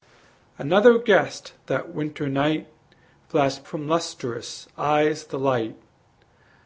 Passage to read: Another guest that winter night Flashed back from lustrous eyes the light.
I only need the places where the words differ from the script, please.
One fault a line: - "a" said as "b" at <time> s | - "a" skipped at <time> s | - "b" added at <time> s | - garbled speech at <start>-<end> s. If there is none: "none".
- "back" skipped at 3.7 s